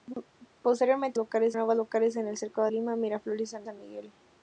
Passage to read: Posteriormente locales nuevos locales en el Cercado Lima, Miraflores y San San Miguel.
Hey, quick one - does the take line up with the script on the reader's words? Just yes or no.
yes